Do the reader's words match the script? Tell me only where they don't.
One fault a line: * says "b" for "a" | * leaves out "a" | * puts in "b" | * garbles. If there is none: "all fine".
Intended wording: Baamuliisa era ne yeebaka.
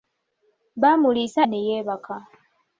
* leaves out "era"